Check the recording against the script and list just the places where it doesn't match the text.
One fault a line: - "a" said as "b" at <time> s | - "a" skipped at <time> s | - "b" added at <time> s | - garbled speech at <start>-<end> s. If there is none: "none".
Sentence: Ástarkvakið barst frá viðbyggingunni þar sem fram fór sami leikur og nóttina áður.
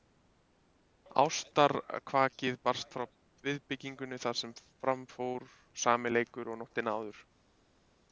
none